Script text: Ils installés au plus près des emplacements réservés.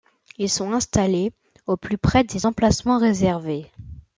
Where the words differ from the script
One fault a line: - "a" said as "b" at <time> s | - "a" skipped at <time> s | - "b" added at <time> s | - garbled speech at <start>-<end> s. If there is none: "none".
- "sont" added at 0.5 s